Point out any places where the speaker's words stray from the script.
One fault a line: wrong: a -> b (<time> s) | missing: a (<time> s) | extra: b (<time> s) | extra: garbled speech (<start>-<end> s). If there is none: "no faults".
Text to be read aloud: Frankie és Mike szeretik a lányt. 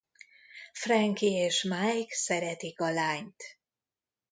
no faults